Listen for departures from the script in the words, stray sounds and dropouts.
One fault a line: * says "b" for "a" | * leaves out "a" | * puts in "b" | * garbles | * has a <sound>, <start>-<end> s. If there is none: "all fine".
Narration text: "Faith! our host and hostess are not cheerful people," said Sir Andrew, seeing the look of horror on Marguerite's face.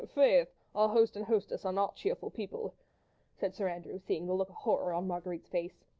all fine